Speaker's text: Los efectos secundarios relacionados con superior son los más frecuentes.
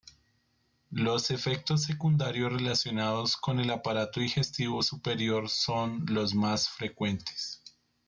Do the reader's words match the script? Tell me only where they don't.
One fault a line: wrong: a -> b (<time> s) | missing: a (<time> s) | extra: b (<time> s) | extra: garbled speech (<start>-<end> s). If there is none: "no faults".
extra: el aparato digestivo (3.6 s)